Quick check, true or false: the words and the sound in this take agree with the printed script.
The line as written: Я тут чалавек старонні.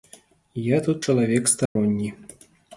false